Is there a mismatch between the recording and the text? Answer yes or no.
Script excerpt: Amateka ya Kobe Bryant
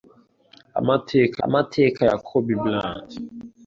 yes